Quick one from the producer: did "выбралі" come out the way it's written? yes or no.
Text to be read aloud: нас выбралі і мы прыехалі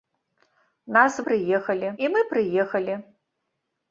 no